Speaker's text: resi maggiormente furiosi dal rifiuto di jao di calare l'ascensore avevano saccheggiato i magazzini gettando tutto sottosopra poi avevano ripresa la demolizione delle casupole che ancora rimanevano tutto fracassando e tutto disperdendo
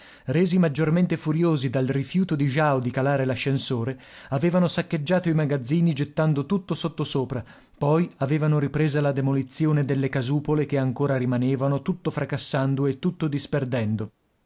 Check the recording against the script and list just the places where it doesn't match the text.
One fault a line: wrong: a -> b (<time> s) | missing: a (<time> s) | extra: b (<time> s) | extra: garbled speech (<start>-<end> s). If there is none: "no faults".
no faults